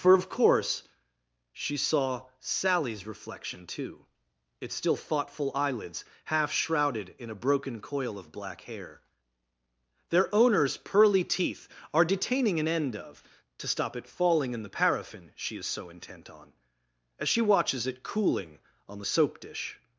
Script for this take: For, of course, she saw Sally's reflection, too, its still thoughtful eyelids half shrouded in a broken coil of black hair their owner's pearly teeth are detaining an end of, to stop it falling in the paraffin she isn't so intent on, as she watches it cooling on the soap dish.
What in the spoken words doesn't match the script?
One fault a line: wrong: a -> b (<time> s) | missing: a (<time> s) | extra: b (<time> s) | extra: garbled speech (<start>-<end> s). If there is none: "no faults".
wrong: isn't -> is (15.6 s)